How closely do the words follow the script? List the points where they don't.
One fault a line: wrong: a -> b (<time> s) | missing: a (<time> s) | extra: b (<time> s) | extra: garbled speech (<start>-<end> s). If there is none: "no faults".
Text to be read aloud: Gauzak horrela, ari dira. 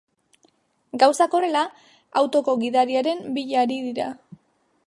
extra: autoko gidariaren bila (2.2 s)